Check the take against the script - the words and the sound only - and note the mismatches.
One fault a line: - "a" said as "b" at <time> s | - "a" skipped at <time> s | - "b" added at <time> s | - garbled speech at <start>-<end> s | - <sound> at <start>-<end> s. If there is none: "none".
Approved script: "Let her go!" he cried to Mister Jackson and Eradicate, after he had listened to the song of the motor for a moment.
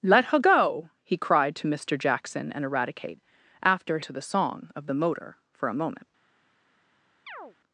- "he had listened" skipped at 4.0 s
- chirp at 7.3-7.6 s